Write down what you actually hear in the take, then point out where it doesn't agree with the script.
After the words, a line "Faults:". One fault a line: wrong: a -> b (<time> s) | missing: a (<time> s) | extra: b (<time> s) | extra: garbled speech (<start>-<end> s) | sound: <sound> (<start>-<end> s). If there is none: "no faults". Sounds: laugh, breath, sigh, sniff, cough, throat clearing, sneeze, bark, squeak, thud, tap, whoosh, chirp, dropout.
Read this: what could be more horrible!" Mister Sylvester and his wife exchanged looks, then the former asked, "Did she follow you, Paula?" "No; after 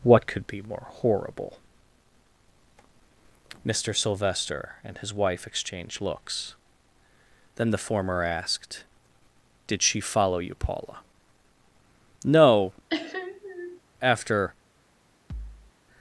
what could be more horrible!" Mister Sylvester and his wife exchanged looks, then the former asked, "Did she follow you, Paula?" "No; after
Faults:
sound: sniff (12.9-13.8 s)
sound: thud (15.3-15.7 s)